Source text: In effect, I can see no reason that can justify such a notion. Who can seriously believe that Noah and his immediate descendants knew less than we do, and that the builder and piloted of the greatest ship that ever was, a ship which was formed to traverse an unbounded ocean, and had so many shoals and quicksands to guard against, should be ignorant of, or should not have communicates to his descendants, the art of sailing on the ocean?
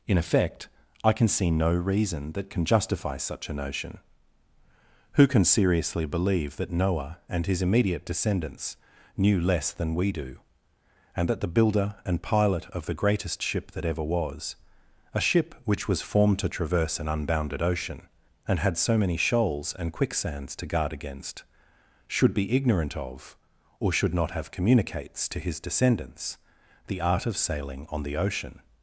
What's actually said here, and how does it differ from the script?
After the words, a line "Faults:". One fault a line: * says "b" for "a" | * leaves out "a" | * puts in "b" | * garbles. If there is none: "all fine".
In effect, I can see no reason that can justify such a notion. Who can seriously believe that Noah and his immediate descendants knew less than we do, and that the builder and pilot of the greatest ship that ever was, a ship which was formed to traverse an unbounded ocean, and had so many shoals and quicksands to guard against, should be ignorant of, or should not have communicates to his descendants, the art of sailing on the ocean?
Faults:
* says "pilot" for "piloted"